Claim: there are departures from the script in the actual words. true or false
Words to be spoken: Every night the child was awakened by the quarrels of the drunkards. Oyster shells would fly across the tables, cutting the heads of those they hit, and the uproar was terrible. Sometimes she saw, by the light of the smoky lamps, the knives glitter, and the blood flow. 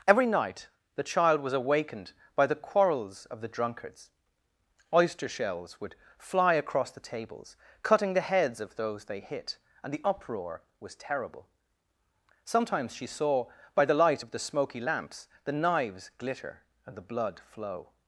false